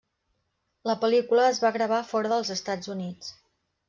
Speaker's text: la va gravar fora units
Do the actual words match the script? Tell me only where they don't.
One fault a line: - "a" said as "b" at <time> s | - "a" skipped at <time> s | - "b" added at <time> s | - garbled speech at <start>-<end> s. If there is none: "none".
- "pel·lícula es" added at 1.0 s
- "dels estats" added at 2.3 s